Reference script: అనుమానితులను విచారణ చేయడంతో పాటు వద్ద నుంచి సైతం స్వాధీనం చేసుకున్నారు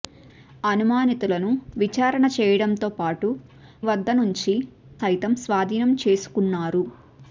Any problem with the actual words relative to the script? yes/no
no